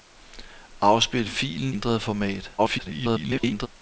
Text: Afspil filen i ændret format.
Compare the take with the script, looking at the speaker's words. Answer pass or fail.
fail